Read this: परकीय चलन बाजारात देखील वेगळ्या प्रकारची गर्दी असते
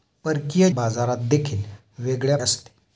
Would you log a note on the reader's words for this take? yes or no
yes